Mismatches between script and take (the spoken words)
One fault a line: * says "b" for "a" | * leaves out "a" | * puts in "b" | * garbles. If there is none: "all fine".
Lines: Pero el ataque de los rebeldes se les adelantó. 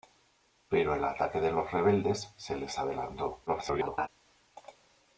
* garbles